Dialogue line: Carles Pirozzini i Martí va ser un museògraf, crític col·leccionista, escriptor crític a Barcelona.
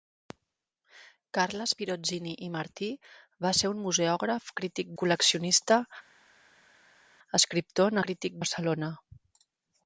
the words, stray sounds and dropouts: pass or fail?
pass